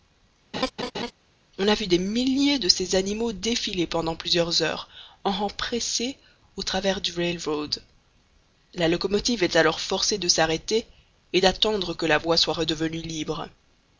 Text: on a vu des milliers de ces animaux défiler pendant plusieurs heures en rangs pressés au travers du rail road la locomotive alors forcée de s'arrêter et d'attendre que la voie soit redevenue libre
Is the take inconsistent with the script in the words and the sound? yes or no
yes